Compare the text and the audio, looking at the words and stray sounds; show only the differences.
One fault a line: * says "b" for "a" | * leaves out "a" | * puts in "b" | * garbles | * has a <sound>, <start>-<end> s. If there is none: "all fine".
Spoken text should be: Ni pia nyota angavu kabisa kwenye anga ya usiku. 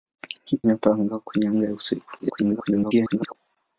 * leaves out "pia"
* leaves out "kabisa"
* garbles